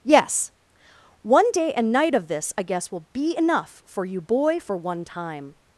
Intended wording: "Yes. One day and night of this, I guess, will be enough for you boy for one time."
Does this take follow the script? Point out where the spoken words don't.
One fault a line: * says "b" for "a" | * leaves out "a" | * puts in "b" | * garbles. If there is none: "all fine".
all fine